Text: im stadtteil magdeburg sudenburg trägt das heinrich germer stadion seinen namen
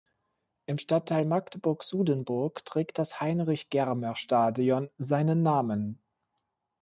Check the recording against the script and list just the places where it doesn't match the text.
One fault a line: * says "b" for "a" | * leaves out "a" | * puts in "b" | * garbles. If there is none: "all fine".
all fine